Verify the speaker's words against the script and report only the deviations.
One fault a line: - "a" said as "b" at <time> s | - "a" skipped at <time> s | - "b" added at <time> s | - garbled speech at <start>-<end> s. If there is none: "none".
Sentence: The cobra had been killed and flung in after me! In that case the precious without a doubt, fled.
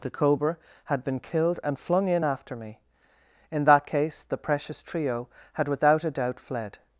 - "trio had" added at 4.8 s